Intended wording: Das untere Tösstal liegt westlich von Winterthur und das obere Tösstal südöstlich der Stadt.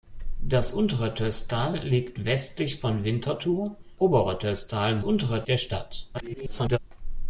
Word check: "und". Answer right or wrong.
wrong